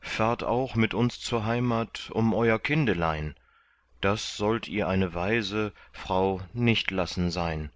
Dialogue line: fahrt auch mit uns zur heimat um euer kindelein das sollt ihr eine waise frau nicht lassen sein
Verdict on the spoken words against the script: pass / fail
pass